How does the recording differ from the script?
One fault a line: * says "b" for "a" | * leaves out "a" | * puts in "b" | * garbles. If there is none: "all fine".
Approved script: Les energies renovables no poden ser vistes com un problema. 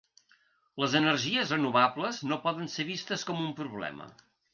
all fine